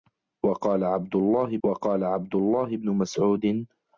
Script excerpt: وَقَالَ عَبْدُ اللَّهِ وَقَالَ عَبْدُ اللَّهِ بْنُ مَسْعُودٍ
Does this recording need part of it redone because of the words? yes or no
no